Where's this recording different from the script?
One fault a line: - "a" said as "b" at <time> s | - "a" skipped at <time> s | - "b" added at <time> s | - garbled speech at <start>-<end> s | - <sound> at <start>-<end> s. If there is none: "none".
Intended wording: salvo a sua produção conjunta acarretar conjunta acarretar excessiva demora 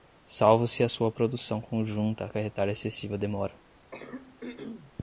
- "se" added at 0.7 s
- "conjunta acarretar" skipped at 2.7 s
- throat clearing at 3.9-4.9 s